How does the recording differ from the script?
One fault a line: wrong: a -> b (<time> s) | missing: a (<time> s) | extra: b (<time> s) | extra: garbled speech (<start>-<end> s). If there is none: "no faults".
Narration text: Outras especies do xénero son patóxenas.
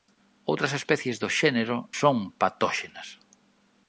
no faults